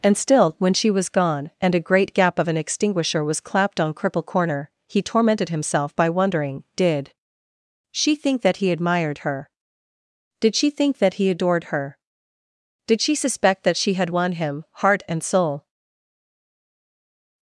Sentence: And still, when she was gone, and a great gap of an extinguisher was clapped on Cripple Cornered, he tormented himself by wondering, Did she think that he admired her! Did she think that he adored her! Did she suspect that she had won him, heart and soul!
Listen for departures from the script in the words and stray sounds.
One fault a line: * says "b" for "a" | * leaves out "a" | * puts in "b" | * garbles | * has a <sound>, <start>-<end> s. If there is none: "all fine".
* says "Corner" for "Cornered"